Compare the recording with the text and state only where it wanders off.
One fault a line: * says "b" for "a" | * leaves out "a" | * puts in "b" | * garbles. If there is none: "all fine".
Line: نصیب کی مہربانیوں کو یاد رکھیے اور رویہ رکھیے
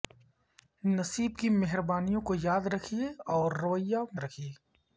all fine